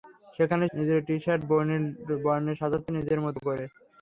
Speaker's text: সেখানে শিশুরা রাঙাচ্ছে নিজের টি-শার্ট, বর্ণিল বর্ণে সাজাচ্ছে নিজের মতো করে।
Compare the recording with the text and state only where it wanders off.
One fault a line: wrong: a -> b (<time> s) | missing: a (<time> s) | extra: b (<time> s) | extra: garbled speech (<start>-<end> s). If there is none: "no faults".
missing: শিশুরা রাঙাচ্ছে (0.7 s)